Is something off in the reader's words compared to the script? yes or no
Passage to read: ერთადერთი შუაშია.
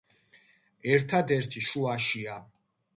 no